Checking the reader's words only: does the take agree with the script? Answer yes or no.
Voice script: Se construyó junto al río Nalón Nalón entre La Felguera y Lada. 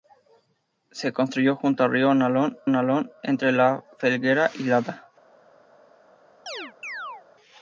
yes